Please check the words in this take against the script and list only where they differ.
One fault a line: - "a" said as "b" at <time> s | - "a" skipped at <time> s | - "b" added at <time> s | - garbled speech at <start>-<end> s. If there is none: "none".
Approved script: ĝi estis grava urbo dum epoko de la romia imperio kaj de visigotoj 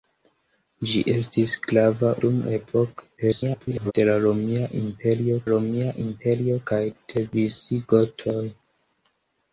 - "urbo" skipped at 2.1 s
- garbled speech at 3.2-3.9 s
- "romia imperio" added at 5.5 s